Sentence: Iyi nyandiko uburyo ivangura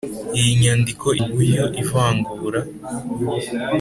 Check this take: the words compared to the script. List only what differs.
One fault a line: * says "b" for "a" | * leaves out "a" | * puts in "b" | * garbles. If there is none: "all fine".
all fine